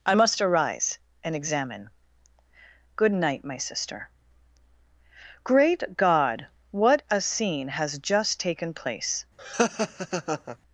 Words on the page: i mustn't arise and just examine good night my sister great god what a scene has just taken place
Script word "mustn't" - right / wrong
wrong